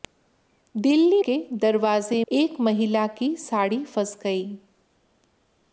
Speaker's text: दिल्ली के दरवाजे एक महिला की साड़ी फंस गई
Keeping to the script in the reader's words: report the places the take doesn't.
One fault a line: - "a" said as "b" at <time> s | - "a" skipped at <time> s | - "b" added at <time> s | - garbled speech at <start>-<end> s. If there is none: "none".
none